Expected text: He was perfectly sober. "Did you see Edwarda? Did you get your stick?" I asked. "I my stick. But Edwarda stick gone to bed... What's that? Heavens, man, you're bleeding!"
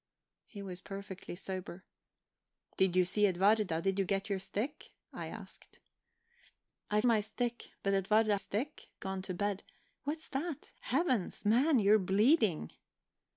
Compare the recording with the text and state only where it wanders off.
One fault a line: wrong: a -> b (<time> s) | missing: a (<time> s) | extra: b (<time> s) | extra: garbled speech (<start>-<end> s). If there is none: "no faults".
no faults